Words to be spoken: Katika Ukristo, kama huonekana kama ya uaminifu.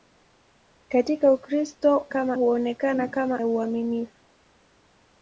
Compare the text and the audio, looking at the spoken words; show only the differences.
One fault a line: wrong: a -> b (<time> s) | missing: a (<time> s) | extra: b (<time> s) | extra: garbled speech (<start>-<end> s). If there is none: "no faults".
no faults